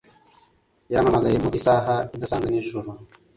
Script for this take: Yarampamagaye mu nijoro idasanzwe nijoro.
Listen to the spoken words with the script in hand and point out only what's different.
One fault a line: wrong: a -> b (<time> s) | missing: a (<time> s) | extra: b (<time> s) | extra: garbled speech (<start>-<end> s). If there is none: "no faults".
wrong: nijoro -> isaha (1.6 s)